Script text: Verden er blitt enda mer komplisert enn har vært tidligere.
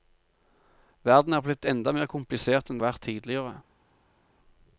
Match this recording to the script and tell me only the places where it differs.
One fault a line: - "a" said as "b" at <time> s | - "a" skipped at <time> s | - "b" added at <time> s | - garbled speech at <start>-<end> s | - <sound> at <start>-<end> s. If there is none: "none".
none